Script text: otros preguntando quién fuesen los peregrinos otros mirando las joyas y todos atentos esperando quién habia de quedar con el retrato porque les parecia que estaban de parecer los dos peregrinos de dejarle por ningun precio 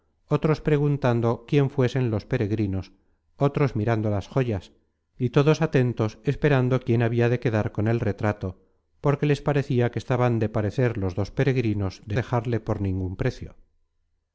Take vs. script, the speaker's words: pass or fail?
pass